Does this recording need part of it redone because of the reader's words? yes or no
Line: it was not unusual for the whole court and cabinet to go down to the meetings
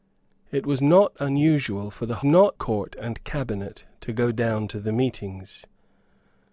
yes